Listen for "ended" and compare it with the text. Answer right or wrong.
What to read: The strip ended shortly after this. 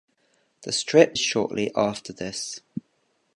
wrong